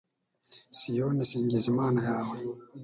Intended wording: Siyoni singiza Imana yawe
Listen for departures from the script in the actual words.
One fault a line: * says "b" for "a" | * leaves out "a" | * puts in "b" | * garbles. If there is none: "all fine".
all fine